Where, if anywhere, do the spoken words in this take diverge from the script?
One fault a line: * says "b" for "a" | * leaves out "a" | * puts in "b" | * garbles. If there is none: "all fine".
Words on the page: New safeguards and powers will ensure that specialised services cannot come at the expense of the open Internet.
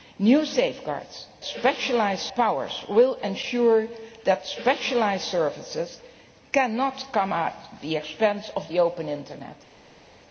* says "specialised" for "and"